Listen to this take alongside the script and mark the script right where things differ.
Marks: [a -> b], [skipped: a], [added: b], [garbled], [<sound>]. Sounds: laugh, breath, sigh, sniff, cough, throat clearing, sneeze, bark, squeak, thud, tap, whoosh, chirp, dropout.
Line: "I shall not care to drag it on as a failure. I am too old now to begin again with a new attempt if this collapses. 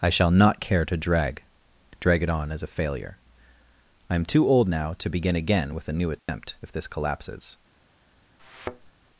"I shall not care to drag [added: drag] it on as a failure. I am too old now to begin again with a new attempt [dropout] if this collapses. [thud]